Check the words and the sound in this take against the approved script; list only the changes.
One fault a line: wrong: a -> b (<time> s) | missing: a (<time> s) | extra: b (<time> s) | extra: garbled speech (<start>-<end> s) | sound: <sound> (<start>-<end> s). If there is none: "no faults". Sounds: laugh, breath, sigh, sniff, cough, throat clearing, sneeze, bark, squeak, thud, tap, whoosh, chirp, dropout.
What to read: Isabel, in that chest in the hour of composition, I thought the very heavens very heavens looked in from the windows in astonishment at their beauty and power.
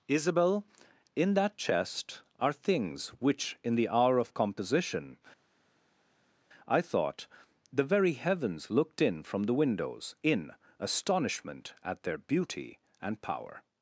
extra: are things which (2.4 s)
missing: very heavens (8.7 s)